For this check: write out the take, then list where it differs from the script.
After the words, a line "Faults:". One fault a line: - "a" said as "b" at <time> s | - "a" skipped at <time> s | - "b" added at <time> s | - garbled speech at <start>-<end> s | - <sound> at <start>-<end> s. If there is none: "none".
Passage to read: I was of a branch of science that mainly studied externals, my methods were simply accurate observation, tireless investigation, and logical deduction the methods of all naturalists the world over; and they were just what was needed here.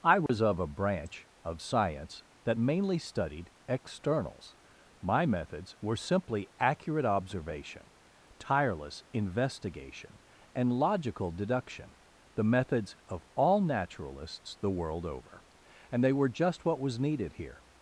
I was of a branch of science that mainly studied externals, my methods were simply accurate observation, tireless investigation, and logical deduction the methods of all naturalists the world over; and they were just what was needed here.
Faults:
- dropout at 0.3-0.3 s